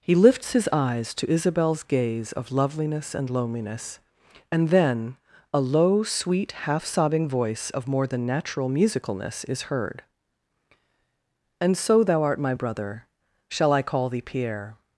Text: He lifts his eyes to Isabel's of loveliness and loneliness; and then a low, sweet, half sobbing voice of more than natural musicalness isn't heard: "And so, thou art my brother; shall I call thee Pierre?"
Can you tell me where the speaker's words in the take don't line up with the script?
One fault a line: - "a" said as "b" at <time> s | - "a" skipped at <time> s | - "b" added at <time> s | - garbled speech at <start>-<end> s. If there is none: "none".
- "gaze" added at 1.8 s
- "isn't" said as "is" at 9.4 s